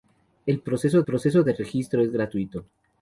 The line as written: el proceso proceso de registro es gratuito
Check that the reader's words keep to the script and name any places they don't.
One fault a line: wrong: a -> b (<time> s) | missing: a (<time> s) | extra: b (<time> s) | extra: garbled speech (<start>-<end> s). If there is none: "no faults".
no faults